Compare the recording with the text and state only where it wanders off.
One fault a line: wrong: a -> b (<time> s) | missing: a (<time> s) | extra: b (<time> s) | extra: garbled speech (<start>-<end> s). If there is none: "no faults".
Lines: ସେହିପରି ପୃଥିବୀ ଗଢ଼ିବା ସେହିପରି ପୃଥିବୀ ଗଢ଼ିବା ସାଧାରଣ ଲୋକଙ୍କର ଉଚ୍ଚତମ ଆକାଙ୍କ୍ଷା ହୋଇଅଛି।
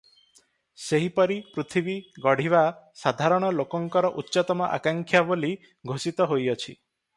missing: ସେହିପରି ପୃଥିବୀ ଗଢ଼ିବା (2.6 s)
extra: ବୋଲି ଘୋଷିତ (5.3 s)